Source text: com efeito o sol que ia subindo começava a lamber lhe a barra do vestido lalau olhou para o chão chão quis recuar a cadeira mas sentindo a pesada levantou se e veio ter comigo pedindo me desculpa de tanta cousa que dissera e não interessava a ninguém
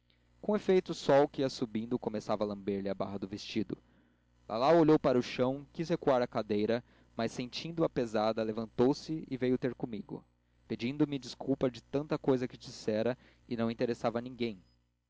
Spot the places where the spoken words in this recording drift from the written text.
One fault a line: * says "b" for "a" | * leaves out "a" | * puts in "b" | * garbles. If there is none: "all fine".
* leaves out "chão"